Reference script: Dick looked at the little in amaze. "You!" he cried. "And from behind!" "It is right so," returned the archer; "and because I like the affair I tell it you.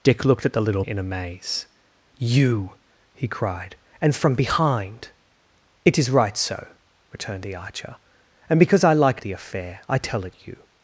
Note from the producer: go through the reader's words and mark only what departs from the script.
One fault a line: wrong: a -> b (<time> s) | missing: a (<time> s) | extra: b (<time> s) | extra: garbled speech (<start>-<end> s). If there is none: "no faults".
no faults